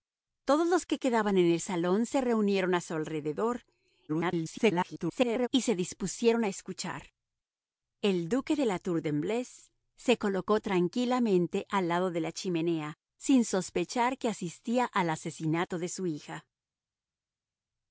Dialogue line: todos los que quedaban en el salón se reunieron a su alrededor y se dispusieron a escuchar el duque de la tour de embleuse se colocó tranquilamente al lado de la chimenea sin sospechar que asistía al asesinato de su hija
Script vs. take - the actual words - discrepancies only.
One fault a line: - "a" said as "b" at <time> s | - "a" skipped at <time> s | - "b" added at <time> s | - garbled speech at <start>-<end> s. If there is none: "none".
- garbled speech at 4.1-5.5 s